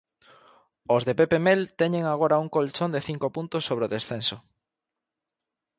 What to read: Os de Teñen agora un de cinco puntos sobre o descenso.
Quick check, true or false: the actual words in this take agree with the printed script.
false